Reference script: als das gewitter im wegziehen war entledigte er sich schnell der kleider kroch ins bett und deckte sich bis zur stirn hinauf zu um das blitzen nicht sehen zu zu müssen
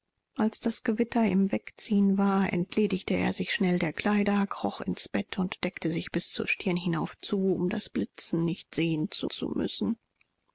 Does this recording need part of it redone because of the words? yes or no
no